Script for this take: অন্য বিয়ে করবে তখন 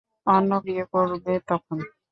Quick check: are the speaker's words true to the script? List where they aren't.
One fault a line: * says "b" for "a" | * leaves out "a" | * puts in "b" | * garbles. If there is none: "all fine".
all fine